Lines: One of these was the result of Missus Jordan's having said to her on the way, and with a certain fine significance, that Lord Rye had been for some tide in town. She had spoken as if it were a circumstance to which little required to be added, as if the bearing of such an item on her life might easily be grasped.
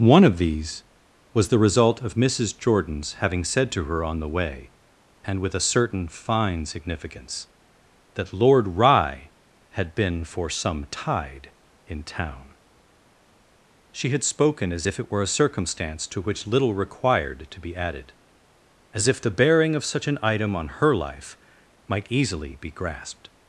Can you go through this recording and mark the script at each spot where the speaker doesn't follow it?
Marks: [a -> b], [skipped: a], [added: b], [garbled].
One of these was the result of Missus Jordan's having said to her on the way, and with a certain fine significance, that Lord Rye had been for some tide in town. She had spoken as if it were a circumstance to which little required to be added, as if the bearing of such an item on her life might easily be grasped.